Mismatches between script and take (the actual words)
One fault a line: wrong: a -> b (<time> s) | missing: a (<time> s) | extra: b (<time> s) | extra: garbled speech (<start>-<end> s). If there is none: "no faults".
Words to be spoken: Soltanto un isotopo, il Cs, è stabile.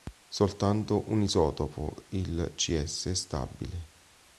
no faults